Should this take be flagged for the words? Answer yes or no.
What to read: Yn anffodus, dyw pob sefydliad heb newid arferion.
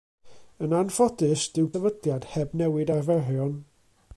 yes